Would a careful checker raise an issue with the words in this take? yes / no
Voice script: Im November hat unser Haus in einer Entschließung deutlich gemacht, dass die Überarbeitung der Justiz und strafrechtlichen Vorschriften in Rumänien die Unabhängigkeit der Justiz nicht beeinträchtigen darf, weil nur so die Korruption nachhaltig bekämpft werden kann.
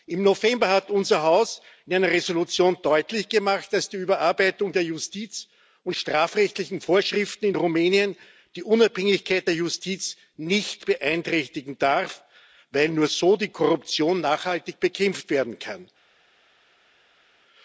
no